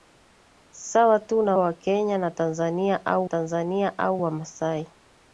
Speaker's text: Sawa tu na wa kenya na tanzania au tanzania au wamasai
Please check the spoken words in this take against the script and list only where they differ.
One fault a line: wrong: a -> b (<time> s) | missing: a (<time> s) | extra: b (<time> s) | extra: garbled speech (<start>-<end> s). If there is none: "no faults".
no faults